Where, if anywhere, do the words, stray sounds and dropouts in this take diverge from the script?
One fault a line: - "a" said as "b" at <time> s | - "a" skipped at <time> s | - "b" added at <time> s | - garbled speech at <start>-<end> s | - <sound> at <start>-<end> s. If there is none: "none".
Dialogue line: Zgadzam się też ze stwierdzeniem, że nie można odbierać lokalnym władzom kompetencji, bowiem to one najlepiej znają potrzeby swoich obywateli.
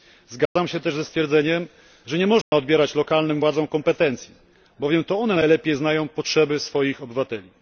- dropout at 0.5-0.6 s
- dropout at 2.4-2.5 s